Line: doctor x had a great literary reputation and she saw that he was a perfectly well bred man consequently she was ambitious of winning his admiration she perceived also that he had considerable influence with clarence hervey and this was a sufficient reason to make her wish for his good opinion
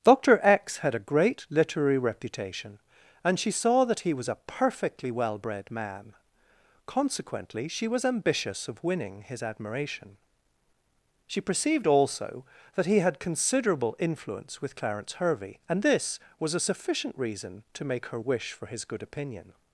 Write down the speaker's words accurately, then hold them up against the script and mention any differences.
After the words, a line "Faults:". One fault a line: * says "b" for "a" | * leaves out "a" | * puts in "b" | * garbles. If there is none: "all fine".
doctor x had a great literary reputation and she saw that he was a perfectly well bred man consequently she was ambitious of winning his admiration she perceived also that he had considerable influence with clarence hervey and this was a sufficient reason to make her wish for his good opinion
Faults:
all fine